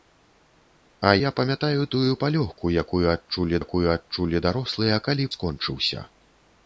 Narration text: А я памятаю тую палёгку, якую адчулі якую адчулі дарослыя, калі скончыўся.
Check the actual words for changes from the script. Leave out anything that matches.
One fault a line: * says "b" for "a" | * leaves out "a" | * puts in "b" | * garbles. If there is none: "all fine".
all fine